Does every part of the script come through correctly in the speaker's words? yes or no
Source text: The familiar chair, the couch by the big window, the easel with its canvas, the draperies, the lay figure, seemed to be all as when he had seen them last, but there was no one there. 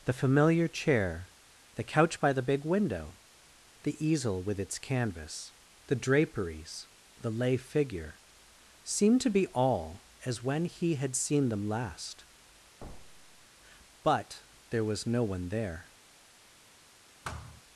yes